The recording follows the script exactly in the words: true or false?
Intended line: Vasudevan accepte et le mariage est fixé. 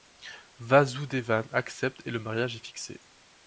true